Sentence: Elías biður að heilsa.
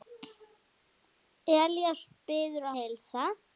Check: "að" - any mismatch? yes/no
yes